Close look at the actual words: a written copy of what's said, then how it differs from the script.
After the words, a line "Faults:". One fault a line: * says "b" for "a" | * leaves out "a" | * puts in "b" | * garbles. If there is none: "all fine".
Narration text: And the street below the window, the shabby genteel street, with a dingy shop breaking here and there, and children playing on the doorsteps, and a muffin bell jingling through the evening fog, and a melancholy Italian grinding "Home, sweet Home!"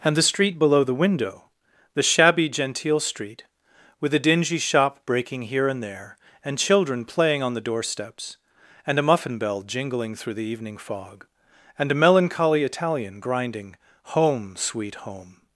And the street below the window, the shabby genteel street, with a dingy shop breaking here and there, and children playing on the doorsteps, and a muffin bell jingling through the evening fog, and a melancholy Italian grinding "Home, sweet Home!"
Faults:
all fine